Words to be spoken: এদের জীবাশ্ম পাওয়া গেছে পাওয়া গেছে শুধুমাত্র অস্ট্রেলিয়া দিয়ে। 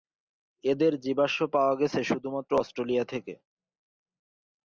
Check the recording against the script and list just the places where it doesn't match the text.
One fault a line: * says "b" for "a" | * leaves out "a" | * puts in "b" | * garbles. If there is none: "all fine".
* leaves out "পাওয়া গেছে"
* says "থেকে" for "দিয়ে"